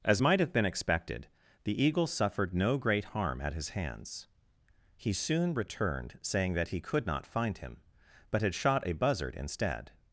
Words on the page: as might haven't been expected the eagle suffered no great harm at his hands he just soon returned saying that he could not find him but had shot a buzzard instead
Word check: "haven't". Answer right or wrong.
wrong